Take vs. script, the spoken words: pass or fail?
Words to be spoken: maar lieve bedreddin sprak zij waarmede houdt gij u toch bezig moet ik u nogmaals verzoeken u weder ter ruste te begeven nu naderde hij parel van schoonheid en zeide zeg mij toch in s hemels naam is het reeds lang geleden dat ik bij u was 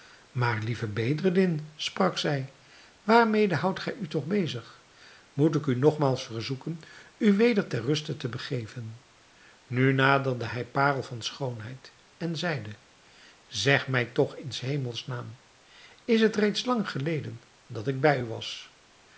pass